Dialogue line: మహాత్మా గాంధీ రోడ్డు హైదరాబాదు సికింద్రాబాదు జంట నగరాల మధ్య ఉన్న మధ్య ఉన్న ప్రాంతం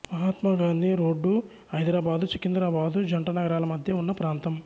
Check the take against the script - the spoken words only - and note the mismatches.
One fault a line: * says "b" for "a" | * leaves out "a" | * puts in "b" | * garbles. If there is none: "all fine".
* leaves out "మధ్య ఉన్న"